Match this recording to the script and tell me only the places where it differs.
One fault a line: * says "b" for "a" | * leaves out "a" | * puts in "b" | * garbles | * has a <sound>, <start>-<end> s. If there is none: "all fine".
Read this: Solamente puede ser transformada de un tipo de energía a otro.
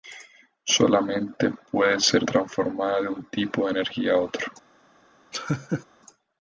* has a laugh, 5.3-5.8 s